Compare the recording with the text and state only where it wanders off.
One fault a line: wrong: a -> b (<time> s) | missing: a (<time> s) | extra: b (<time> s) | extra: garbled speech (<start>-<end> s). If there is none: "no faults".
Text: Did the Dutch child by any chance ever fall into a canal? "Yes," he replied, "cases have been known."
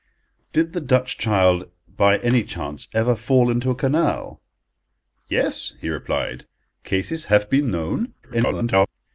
extra: garbled speech (8.2-8.9 s)